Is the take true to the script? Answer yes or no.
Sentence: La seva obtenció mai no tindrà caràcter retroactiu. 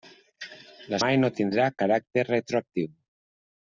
no